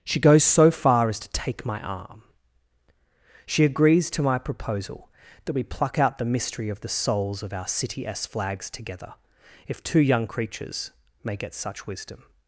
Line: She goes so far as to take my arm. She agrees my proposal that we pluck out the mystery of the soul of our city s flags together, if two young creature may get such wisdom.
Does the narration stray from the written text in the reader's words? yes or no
yes